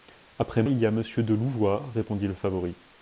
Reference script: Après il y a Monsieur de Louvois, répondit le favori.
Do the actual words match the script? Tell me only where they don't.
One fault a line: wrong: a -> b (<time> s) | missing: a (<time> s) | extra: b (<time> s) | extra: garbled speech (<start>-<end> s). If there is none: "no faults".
no faults